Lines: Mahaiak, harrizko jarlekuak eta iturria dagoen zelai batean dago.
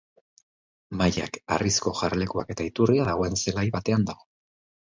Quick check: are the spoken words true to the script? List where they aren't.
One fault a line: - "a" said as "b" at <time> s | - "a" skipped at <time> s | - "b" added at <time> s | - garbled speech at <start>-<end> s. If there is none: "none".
none